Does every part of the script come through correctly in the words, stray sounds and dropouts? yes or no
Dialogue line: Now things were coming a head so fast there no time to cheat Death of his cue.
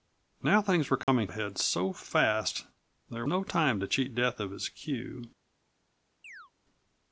no